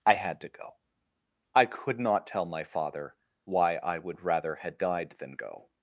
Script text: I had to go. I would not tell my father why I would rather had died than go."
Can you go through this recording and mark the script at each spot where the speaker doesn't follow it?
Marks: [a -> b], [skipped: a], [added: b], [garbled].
I had to go. I [would -> could] not tell my father why I would rather had died than go."